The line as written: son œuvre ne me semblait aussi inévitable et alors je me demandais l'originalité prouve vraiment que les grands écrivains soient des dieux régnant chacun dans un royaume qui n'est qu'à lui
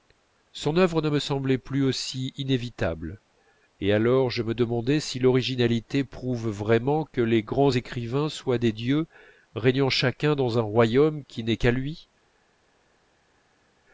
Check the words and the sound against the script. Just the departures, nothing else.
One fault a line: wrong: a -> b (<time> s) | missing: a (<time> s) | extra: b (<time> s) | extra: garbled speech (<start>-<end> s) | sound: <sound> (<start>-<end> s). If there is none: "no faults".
extra: plus (1.6 s)
extra: si (5.0 s)